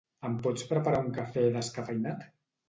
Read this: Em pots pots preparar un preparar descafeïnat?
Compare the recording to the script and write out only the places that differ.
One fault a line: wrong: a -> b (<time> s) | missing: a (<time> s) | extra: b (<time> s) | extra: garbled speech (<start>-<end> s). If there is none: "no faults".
missing: pots (0.6 s)
wrong: preparar -> cafè (1.2 s)